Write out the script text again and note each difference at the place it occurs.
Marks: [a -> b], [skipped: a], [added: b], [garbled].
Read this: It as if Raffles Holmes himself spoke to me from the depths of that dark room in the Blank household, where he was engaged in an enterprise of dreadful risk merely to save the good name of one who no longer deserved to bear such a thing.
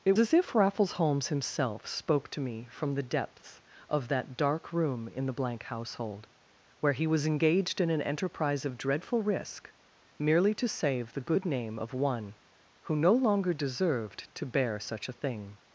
It as if Raffles Holmes himself spoke to me from the depths of that dark room in the Blank household, where he was engaged in an enterprise of dreadful risk merely to save the good name of one who no longer deserved to bear such a thing.